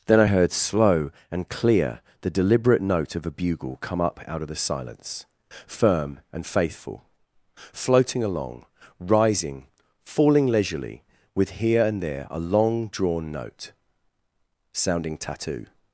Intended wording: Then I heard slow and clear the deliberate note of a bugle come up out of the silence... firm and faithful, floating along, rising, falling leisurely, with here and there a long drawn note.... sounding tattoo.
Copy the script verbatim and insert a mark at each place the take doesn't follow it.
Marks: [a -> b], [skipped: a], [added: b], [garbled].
Then I heard slow and clear the deliberate note of a bugle come up out of the silence... firm and faithful, floating along, rising, falling leisurely, with here and there a long drawn note.... sounding tattoo.